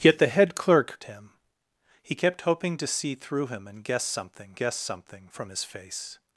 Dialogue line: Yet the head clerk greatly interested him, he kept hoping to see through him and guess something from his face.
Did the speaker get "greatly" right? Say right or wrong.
wrong